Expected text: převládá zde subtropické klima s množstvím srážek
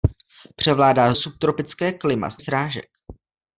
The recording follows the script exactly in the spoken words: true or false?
false